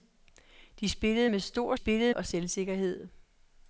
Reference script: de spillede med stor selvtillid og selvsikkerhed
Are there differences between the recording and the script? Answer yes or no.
yes